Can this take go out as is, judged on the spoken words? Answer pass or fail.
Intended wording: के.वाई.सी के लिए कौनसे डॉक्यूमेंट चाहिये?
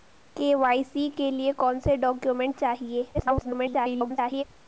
fail